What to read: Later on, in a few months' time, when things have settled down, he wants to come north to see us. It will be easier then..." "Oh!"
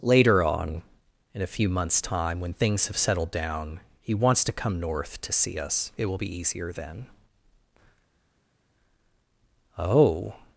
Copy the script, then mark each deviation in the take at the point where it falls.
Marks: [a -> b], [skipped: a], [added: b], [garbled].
Later on, in a few months' time, when things have settled down, he wants to come north to see us. It will be easier then..." "Oh!"